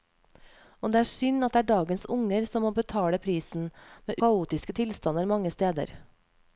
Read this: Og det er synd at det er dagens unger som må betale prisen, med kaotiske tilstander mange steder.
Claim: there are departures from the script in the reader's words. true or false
false